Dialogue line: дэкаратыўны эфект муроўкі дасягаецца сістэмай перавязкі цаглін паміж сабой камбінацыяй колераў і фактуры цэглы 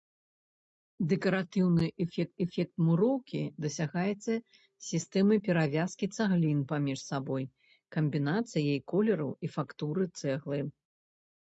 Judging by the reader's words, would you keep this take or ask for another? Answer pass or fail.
fail